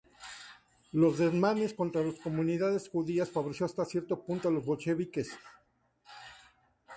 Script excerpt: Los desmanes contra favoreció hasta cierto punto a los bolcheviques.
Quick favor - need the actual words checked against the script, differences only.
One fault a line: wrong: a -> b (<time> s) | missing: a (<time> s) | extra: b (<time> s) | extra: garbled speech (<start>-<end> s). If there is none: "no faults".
extra: las comunidades judías (2.0 s)